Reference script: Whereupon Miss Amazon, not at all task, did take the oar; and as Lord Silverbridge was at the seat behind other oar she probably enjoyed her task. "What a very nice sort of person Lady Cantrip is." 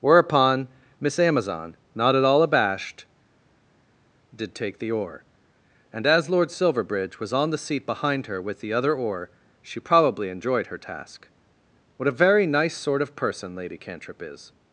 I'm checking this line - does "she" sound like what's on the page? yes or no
yes